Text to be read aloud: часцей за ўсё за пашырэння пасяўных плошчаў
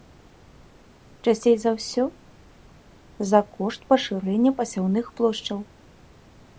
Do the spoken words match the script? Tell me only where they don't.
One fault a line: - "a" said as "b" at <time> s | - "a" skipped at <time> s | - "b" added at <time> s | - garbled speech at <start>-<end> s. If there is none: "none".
- "кошт" added at 3.6 s